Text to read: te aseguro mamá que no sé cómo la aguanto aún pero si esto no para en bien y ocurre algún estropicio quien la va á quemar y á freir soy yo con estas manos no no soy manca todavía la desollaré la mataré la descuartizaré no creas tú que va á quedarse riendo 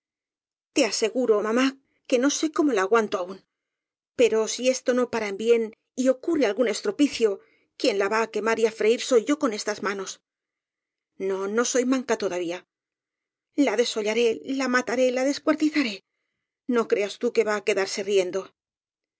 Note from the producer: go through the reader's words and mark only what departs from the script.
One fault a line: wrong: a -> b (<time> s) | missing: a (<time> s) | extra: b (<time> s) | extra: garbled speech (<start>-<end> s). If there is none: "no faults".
no faults